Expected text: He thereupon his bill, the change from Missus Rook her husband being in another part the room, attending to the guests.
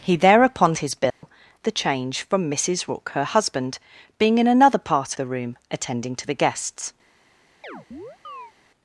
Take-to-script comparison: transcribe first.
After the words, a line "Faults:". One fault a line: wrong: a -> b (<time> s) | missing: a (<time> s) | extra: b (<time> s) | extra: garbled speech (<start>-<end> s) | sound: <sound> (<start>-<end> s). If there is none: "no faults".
He thereupon his bill, the change from Missus Rook her husband being in another part the room, attending to the guests.
Faults:
sound: dropout (1.1-1.2 s)
sound: chirp (7.6-8.5 s)